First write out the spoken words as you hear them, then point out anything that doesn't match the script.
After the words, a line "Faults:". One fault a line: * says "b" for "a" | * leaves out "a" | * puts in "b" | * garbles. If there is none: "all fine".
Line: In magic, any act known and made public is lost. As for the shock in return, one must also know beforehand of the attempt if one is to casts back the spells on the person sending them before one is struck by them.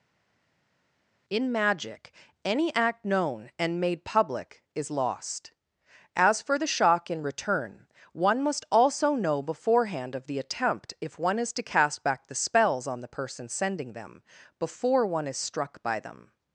In magic, any act known and made public is lost. As for the shock in return, one must also know beforehand of the attempt if one is to cast back the spells on the person sending them before one is struck by them.
Faults:
* says "cast" for "casts"